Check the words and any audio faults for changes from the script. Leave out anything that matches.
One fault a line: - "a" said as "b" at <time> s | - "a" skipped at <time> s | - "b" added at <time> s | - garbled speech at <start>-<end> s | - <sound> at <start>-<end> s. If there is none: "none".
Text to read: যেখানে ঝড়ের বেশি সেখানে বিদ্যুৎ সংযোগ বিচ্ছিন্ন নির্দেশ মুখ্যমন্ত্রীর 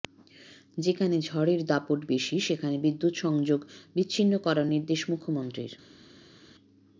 - "দাপট" added at 1.6 s
- "করার" added at 4.4 s